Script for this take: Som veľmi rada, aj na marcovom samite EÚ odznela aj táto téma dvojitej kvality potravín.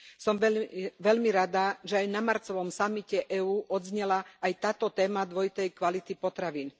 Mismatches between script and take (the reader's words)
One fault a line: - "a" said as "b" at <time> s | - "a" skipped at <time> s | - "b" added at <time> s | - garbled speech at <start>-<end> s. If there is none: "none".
- "že" added at 1.8 s